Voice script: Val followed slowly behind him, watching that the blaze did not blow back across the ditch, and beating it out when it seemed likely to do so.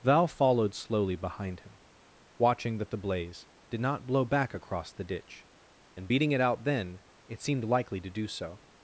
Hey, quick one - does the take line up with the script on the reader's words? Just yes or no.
no